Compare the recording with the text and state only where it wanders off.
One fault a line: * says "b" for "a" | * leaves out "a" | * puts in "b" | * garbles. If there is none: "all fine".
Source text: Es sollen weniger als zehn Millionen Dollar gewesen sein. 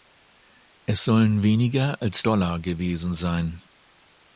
* leaves out "zehn Millionen"